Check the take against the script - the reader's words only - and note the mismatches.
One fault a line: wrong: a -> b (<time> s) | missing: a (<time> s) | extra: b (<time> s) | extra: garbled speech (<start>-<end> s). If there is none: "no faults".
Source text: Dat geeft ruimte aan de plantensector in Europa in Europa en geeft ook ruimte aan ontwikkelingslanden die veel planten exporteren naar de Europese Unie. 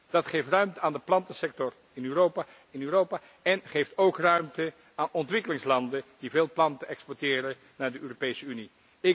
no faults